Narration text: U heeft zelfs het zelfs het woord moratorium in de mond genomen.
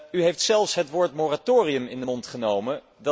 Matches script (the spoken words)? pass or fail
fail